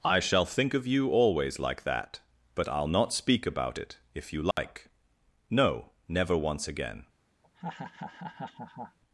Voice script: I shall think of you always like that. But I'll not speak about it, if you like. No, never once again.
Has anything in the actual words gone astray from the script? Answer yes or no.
no